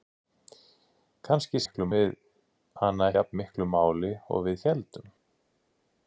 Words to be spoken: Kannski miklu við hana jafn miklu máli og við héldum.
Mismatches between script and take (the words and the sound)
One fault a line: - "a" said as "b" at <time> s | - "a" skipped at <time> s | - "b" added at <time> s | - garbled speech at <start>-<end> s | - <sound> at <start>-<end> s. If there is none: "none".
none